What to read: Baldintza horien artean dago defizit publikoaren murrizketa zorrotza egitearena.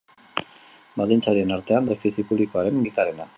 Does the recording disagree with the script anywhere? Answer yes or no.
yes